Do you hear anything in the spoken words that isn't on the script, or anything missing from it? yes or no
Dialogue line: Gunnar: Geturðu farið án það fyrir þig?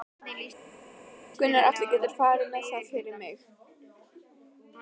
yes